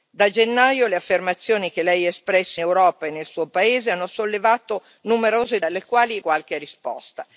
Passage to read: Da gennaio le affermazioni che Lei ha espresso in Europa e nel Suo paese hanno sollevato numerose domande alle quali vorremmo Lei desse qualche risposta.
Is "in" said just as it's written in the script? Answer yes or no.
no